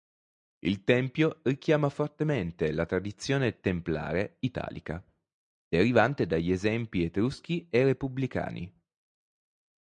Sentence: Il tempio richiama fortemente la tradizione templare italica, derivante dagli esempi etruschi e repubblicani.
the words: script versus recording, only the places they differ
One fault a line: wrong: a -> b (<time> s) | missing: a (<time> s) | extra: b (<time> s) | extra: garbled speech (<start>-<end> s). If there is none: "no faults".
no faults